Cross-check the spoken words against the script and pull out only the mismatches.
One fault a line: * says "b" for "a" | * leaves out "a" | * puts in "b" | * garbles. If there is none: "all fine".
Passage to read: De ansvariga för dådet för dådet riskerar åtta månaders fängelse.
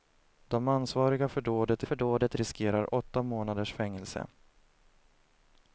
all fine